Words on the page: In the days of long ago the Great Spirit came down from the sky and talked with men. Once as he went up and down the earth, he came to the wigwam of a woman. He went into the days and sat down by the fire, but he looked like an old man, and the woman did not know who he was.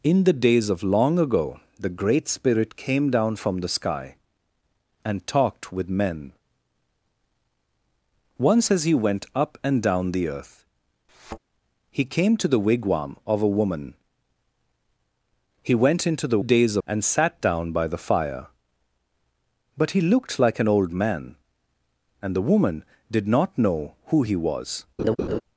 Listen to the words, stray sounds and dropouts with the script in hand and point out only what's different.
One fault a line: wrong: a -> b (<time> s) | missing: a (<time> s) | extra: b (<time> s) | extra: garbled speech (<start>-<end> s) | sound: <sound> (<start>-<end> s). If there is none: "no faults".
sound: thud (11.1-11.4 s)
sound: laugh (25.0-25.4 s)